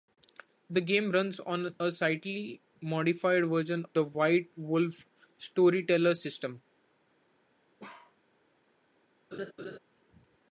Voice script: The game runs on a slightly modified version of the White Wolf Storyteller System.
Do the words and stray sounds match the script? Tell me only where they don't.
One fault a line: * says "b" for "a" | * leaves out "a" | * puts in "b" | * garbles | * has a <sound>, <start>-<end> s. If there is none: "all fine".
* leaves out "of"
* has a bark, 7.8-8.2 s
* has a laugh, 9.3-9.8 s